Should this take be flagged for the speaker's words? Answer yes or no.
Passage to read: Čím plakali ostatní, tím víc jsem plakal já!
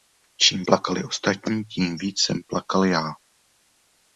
no